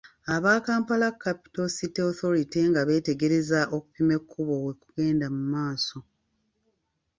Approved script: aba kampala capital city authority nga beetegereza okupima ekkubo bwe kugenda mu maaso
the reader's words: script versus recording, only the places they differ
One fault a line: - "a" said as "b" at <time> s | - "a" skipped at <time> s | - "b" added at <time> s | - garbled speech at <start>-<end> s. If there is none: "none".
none